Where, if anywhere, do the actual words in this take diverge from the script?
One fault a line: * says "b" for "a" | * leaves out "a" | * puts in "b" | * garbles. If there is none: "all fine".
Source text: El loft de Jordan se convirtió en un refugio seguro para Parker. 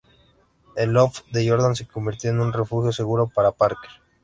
all fine